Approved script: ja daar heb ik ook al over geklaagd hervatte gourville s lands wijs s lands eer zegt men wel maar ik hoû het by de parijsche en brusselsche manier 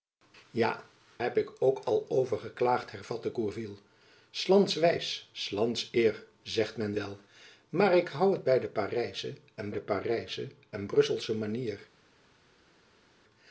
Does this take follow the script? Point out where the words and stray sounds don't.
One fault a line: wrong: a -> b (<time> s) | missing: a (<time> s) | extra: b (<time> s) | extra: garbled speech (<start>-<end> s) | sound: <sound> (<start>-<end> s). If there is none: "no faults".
missing: daar (0.8 s)
extra: de parijsche en (9.7 s)